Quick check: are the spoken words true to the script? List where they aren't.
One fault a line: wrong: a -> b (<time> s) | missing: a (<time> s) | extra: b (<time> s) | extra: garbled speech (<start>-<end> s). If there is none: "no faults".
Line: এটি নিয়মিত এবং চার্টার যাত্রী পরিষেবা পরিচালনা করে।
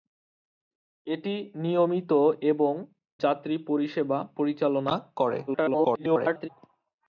missing: চার্টার (2.7 s)
extra: garbled speech (5.5-6.5 s)